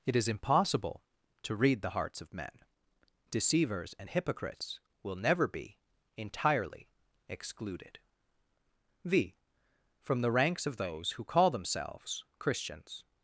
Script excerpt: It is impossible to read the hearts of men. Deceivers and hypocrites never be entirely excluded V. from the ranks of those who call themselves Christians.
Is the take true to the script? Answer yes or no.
no